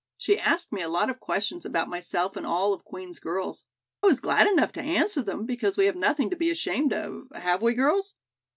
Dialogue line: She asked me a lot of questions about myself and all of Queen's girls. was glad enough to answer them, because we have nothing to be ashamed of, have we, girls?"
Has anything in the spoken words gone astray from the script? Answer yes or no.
no